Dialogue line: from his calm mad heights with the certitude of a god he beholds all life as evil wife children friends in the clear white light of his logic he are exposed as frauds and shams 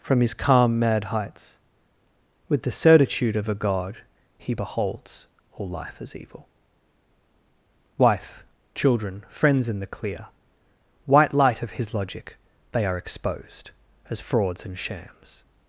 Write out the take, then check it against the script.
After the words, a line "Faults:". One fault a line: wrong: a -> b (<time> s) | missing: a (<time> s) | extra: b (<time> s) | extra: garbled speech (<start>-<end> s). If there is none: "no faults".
from his calm mad heights with the certitude of a god he beholds all life as evil wife children friends in the clear white light of his logic they are exposed as frauds and shams
Faults:
wrong: he -> they (12.7 s)